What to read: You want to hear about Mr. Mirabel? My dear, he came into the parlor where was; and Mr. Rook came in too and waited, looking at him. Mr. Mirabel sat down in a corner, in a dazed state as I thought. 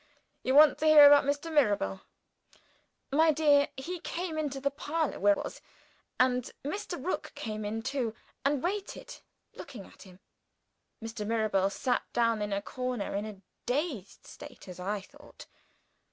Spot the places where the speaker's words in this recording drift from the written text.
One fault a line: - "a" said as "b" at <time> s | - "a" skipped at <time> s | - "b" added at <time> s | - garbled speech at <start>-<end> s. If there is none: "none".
none